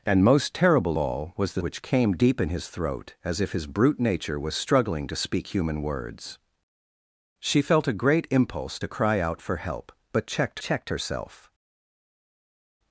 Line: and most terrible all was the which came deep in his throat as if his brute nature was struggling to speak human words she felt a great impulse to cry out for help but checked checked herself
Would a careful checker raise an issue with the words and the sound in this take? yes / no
no